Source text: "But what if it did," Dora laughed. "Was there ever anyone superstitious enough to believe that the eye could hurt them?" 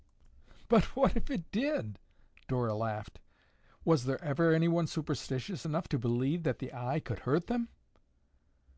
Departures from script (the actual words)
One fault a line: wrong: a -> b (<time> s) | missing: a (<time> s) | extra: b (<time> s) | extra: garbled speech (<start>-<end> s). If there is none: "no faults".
no faults